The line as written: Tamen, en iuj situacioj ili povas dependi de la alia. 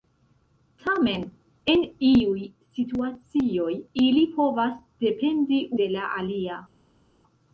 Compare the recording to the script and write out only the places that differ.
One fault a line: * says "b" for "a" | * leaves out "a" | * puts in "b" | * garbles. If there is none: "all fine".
all fine